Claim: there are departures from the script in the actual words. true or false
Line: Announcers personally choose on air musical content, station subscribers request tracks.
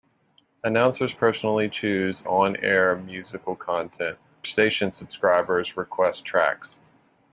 false